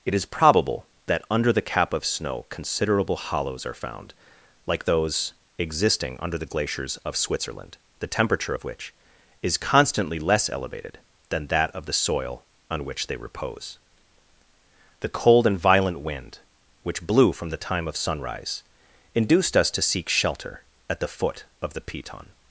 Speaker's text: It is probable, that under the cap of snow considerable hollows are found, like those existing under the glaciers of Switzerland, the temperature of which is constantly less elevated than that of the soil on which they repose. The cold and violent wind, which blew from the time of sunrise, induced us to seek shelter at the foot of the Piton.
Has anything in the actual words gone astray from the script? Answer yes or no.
no